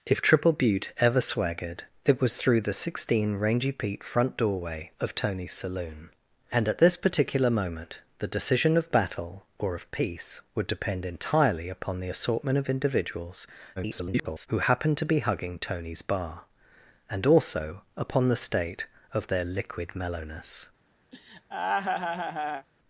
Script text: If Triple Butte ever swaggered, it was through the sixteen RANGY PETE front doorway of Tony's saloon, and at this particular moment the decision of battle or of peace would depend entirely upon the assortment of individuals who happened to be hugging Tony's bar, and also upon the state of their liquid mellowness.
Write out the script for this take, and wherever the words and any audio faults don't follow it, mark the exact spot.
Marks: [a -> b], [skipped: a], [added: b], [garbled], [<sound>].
If Triple Butte ever swaggered, it was through the sixteen RANGY PETE front doorway of Tony's saloon, and at this particular moment the decision of battle or of peace would depend entirely upon the assortment of individuals [garbled] who happened to be hugging Tony's bar, and also upon the state of their liquid mellowness. [laugh]